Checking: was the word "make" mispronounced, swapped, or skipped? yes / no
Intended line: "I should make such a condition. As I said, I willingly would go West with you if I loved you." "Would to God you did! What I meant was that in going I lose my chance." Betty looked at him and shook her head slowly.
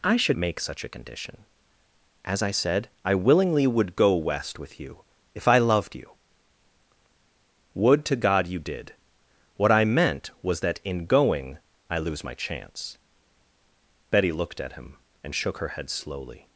no